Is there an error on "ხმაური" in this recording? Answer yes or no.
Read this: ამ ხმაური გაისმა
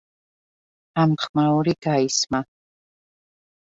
no